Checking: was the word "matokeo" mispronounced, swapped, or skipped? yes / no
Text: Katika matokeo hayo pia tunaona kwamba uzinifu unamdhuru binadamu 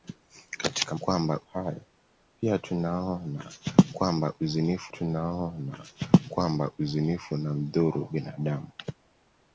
yes